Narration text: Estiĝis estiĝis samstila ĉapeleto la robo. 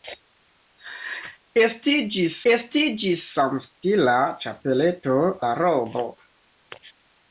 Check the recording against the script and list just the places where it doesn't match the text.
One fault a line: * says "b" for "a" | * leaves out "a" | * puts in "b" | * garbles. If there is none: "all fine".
all fine